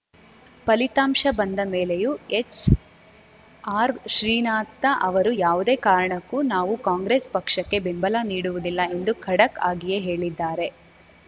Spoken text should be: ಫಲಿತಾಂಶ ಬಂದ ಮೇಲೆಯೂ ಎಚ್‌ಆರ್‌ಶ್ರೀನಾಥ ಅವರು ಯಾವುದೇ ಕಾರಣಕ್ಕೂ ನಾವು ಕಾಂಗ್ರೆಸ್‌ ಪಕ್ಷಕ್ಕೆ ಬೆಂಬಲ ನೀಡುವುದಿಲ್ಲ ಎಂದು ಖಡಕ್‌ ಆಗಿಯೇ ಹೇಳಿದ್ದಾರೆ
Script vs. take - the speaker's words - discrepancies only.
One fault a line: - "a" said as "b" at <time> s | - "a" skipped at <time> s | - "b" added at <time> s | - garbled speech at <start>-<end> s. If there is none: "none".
none